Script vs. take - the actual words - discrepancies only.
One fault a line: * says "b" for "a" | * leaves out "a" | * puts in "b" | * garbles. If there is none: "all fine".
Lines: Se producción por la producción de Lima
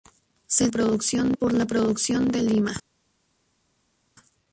all fine